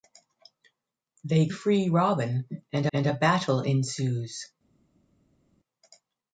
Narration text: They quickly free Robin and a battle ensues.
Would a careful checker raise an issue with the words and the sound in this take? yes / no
yes